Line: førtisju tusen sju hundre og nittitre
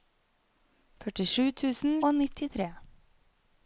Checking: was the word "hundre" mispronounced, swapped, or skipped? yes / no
yes